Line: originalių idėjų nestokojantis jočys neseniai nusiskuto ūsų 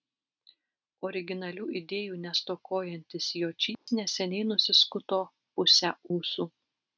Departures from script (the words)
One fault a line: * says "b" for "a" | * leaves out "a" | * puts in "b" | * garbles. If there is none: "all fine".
* puts in "pusę"